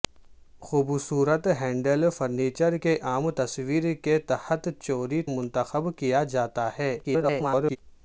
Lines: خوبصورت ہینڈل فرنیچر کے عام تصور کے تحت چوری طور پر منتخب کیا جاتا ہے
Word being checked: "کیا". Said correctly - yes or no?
yes